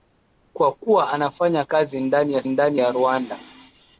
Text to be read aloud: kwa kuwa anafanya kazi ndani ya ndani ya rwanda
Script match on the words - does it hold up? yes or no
yes